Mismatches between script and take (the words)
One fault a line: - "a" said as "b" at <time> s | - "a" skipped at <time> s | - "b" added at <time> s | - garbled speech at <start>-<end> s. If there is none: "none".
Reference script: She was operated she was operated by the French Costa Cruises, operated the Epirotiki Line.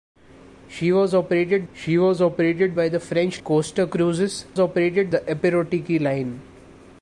none